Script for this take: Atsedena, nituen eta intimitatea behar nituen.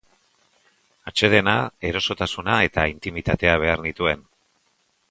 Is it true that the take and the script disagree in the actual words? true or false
true